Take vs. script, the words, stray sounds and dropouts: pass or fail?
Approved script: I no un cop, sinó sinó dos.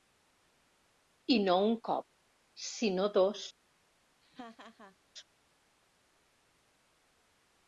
fail